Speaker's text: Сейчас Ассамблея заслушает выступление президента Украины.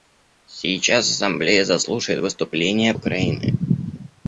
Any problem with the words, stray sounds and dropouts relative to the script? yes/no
yes